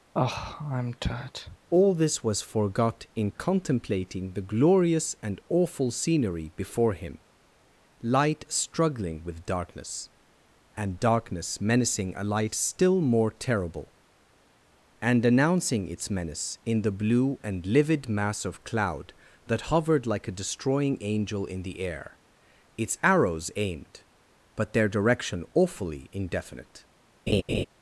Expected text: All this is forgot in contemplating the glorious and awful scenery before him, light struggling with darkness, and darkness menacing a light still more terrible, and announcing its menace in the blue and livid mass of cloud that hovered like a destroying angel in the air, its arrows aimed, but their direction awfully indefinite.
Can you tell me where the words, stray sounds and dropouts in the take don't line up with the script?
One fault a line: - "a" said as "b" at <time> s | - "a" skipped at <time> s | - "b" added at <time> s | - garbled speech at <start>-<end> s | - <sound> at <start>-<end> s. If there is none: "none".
- sigh at 0.1-1.6 s
- "is" said as "was" at 2.2 s
- laugh at 27.3-27.7 s